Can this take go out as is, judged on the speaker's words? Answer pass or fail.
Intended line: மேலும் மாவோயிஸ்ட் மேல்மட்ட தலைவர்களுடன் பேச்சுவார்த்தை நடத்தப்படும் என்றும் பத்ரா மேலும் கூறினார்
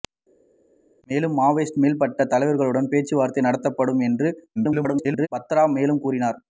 fail